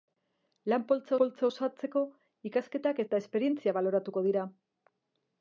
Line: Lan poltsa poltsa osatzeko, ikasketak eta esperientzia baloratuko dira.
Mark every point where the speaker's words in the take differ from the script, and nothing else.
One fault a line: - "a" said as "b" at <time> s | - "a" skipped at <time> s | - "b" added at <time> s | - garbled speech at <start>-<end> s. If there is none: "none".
none